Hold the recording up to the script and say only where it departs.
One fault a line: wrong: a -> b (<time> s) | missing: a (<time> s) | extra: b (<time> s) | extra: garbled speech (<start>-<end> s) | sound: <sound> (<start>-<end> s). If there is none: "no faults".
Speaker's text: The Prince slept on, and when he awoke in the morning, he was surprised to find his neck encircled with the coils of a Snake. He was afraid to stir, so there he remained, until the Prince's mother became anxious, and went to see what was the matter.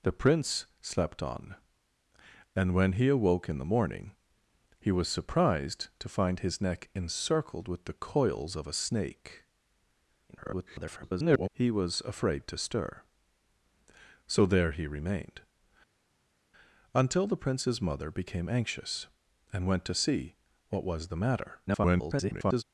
extra: garbled speech (10.3-11.5 s)
extra: garbled speech (21.7-22.6 s)